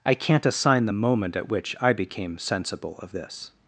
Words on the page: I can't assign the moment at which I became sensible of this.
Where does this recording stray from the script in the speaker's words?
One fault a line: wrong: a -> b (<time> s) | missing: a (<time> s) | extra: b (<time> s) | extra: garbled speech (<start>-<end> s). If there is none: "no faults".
no faults